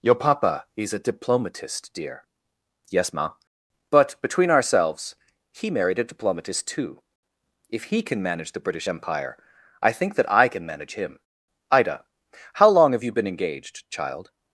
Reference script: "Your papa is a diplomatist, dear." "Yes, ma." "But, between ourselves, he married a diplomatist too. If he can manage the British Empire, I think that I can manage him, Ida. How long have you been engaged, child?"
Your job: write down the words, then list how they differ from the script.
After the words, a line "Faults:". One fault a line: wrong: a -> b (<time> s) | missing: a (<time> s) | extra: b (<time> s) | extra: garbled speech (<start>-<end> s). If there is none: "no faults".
"Your papa is a diplomatist, dear." "Yes, ma." "But, between ourselves, he married a diplomatist too. If he can manage the British Empire, I think that I can manage him, Ida. How long have you been engaged, child?"
Faults:
no faults